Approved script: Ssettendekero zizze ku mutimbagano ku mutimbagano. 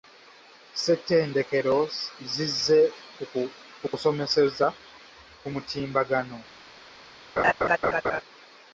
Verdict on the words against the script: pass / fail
fail